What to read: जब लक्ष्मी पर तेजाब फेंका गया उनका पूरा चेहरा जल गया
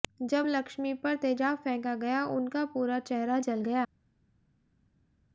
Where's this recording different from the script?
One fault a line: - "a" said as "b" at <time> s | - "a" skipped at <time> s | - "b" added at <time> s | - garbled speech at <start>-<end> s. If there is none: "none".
none